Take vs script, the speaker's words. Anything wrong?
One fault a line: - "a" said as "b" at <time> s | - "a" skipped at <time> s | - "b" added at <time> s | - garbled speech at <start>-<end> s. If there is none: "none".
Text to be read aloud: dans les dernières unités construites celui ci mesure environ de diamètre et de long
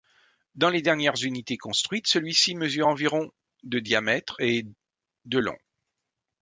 none